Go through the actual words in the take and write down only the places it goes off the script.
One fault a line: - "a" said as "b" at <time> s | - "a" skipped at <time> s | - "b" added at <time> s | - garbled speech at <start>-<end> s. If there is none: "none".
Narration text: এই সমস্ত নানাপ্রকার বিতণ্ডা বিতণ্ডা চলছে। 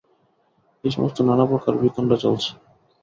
- "বিতণ্ডা" skipped at 2.2 s